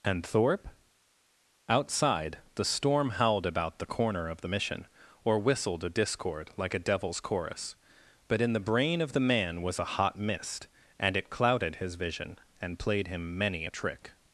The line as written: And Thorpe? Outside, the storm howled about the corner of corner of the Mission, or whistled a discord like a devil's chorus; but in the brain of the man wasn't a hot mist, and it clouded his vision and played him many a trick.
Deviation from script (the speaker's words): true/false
true